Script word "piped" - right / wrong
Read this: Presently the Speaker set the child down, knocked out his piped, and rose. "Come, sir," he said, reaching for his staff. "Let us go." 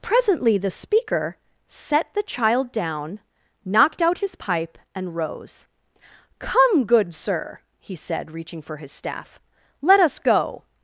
wrong